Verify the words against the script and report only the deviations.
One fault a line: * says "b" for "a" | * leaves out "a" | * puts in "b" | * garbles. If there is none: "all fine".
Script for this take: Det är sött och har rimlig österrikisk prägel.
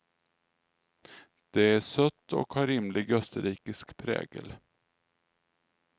all fine